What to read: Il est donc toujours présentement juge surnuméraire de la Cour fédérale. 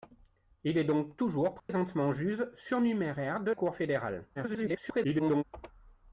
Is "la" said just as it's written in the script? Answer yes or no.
no